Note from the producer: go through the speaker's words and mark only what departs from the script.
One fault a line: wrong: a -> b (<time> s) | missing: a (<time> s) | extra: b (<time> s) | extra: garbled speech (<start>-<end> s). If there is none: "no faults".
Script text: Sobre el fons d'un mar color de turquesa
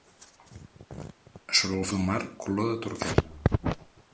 missing: fons (1.8 s)